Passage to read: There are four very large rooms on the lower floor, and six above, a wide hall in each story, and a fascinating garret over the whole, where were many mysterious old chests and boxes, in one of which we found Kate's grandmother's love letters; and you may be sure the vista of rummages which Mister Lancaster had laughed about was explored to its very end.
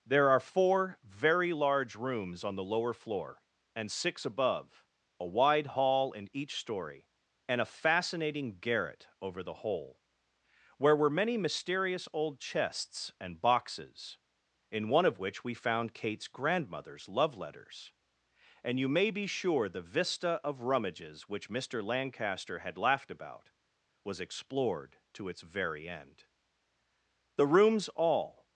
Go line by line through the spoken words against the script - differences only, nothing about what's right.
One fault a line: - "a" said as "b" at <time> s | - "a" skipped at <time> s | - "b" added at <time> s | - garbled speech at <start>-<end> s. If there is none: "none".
- "The rooms all" added at 27.4 s